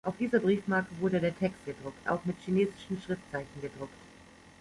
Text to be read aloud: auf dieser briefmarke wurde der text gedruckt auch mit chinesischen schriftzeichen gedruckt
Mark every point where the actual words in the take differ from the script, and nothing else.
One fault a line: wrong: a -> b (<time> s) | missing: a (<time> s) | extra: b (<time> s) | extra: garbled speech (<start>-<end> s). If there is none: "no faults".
no faults